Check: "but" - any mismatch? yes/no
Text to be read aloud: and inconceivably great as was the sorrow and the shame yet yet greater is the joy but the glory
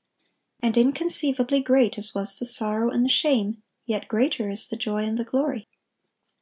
yes